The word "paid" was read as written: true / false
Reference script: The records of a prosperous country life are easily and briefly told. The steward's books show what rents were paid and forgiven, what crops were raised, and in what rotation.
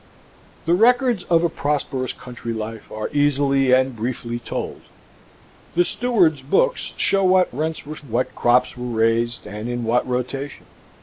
false